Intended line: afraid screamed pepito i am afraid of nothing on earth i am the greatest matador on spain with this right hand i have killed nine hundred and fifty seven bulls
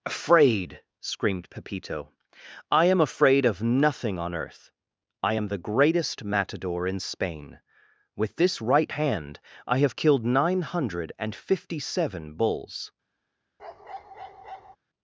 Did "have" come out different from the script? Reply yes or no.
no